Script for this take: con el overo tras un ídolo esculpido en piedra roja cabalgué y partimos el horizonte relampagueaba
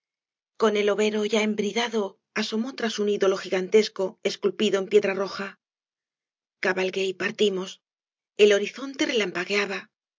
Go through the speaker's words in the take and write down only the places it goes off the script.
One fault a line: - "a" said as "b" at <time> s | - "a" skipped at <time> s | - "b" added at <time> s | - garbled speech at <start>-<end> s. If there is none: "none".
- "ya embridado asomó" added at 1.2 s
- "gigantesco" added at 3.4 s